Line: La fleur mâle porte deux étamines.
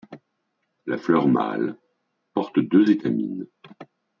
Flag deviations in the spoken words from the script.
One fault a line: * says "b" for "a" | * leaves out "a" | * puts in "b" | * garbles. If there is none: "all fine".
all fine